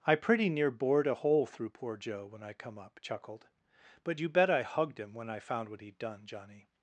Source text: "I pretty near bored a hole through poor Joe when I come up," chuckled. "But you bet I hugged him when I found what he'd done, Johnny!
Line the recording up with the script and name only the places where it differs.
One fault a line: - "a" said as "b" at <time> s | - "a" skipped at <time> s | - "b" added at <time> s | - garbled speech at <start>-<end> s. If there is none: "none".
none